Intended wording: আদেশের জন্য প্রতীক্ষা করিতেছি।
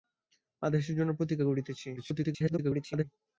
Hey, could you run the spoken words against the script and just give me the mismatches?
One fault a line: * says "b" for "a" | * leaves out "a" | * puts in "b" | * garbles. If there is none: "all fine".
* garbles